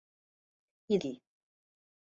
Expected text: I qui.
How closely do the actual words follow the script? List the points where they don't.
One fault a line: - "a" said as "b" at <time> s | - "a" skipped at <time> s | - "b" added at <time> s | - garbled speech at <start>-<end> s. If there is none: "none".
none